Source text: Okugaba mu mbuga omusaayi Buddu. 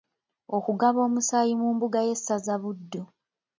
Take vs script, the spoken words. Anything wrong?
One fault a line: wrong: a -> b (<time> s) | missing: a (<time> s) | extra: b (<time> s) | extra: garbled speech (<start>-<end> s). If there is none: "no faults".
extra: omusaayi (1.1 s)
wrong: omusaayi -> y'essaza (2.1 s)